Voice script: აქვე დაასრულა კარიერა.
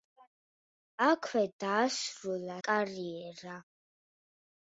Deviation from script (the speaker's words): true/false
false